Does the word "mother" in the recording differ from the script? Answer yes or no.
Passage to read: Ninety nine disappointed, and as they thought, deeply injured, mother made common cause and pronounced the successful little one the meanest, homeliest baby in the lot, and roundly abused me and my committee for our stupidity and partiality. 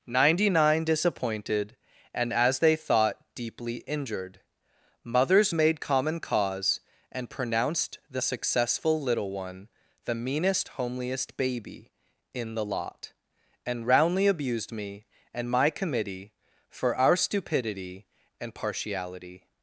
yes